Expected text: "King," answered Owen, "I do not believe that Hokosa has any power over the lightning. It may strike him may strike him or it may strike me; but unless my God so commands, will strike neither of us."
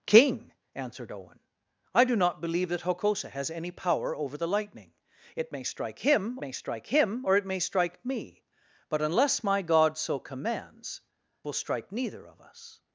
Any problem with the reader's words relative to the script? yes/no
no